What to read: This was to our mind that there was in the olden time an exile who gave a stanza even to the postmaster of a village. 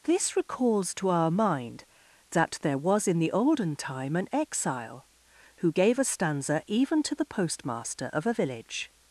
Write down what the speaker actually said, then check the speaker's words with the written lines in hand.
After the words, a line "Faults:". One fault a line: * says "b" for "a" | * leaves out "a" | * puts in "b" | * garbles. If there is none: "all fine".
This recalls to our mind that there was in the olden time an exile who gave a stanza even to the postmaster of a village.
Faults:
* says "recalls" for "was"